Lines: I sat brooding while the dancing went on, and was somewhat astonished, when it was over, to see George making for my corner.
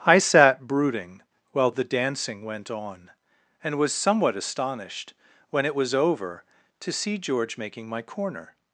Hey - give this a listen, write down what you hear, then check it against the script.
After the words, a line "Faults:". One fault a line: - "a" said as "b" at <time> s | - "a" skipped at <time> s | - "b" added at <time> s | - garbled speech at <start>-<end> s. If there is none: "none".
I sat brooding while the dancing went on, and was somewhat astonished, when it was over, to see George making my corner.
Faults:
- "for" skipped at 7.9 s